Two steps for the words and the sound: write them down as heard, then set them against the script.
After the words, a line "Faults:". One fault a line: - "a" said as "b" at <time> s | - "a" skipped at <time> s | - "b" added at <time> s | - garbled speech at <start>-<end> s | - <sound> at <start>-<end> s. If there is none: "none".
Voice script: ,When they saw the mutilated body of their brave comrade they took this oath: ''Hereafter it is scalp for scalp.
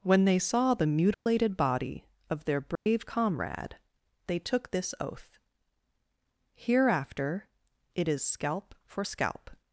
,When they saw the mutilated body of their brave comrade they took this oath: ''Hereafter it is scalp for scalp.
Faults:
- dropout at 1.1-1.3 s
- dropout at 2.8-2.9 s